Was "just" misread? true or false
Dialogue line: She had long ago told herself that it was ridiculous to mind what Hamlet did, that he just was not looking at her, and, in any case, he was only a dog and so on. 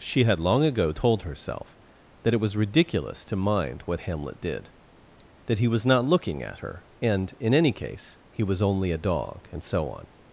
true